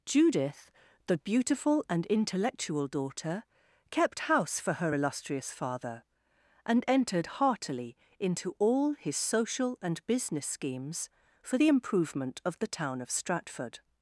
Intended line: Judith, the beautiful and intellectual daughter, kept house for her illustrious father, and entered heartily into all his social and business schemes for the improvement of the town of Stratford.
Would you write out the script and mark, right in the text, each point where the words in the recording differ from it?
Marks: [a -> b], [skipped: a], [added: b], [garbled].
Judith, the beautiful and intellectual daughter, kept house for her illustrious father, and entered heartily into all his social and business schemes for the improvement of the town of Stratford.